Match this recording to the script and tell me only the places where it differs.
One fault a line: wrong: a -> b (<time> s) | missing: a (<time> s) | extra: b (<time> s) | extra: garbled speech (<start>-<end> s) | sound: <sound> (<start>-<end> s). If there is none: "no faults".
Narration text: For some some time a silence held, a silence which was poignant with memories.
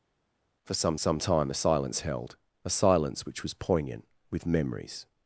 no faults